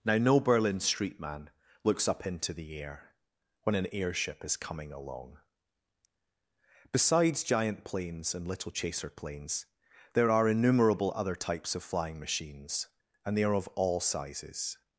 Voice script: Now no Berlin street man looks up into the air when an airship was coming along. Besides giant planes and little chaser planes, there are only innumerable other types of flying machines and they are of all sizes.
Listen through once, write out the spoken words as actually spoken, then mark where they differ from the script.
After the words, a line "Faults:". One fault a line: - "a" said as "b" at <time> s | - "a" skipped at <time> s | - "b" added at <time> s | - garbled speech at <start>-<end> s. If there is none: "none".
Now no Berlin street man looks up into the air when an airship is coming along. Besides giant planes and little chaser planes, there are innumerable other types of flying machines and they are of all sizes.
Faults:
- "was" said as "is" at 4.4 s
- "only" skipped at 10.5 s